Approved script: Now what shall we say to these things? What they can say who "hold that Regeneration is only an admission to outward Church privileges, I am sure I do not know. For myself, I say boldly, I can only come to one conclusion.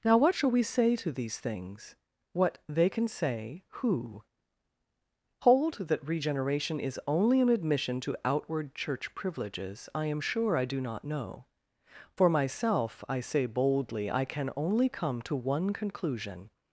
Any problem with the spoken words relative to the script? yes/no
no